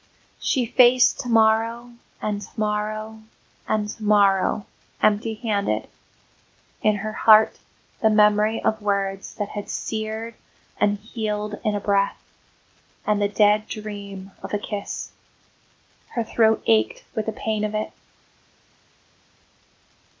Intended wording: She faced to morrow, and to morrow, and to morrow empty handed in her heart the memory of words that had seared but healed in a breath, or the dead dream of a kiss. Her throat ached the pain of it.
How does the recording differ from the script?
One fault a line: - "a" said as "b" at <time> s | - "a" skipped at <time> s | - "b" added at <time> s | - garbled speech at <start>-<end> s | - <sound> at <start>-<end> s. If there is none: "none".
- "but" said as "and" at 10.8 s
- "or" said as "and" at 13.1 s
- "with" added at 17.1 s